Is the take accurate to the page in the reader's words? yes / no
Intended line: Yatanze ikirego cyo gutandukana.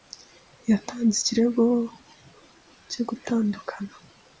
yes